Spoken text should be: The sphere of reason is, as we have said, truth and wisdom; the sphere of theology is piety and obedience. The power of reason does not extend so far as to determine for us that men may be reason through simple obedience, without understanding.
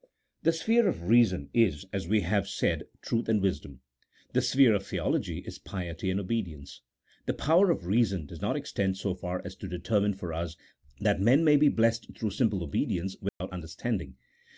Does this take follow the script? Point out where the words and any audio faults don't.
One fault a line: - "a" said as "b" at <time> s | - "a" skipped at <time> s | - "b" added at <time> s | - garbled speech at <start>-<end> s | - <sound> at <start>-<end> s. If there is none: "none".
- "reason" said as "blessed" at 11.7 s
- dropout at 13.3-13.4 s